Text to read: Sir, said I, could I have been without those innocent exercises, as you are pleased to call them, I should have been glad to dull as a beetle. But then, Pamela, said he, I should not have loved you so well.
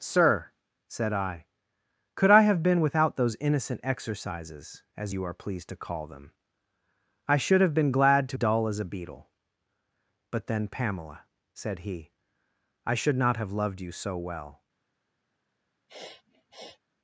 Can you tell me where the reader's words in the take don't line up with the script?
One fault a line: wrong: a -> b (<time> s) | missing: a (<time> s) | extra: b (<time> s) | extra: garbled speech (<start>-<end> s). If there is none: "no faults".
no faults